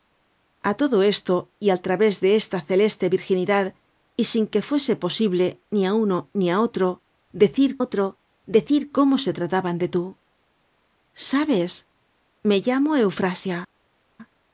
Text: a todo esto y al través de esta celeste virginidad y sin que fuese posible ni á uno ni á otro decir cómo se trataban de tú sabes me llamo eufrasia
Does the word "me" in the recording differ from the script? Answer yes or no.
no